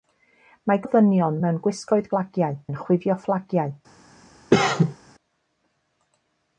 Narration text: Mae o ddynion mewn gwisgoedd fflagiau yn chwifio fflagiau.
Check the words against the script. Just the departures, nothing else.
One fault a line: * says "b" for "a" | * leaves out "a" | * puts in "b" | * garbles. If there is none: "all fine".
all fine